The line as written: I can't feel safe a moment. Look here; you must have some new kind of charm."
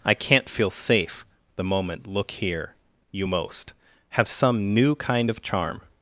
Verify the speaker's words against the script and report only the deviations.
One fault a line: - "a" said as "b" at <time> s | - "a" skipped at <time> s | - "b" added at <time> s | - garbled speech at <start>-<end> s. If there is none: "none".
- "a" said as "the" at 1.6 s
- "must" said as "most" at 3.3 s